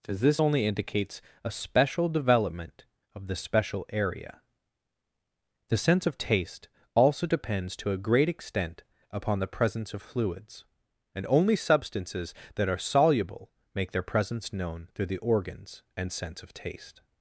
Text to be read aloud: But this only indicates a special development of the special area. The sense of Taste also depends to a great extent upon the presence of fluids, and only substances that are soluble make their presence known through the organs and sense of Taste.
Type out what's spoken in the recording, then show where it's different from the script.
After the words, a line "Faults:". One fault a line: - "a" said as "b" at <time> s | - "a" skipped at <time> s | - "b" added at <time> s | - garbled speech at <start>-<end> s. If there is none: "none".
As this only indicates a special development of the special area. The sense of Taste also depends to a great extent upon the presence of fluids, and only substances that are soluble make their presence known through the organs and sense of Taste.
Faults:
- "But" said as "As" at 0.1 s